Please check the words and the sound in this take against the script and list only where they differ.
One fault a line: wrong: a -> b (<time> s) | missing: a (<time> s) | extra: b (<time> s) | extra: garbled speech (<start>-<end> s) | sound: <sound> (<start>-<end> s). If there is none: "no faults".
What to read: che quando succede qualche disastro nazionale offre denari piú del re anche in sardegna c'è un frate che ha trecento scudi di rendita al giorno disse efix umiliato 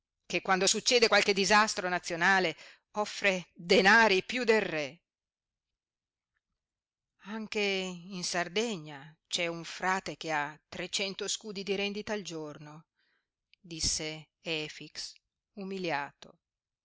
no faults